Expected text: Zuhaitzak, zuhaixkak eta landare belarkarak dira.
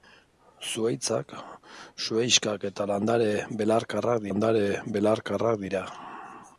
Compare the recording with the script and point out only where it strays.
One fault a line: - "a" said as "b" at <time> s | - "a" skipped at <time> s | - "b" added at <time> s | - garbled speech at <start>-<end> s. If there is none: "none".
- "landare belarkarak" added at 4.3 s